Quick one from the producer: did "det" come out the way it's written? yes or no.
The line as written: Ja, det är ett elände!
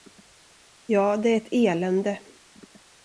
yes